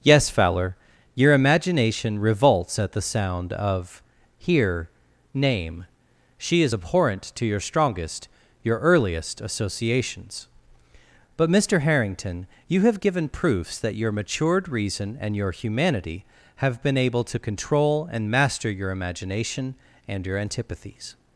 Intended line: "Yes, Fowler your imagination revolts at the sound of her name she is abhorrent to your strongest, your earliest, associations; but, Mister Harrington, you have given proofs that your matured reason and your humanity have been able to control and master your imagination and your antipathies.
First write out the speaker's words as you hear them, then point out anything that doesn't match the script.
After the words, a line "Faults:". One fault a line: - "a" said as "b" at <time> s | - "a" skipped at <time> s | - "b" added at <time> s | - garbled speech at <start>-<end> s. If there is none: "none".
"Yes, Fowler your imagination revolts at the sound of here name she is abhorrent to your strongest, your earliest, associations; but, Mister Harrington, you have given proofs that your matured reason and your humanity have been able to control and master your imagination and your antipathies.
Faults:
- "her" said as "here" at 4.3 s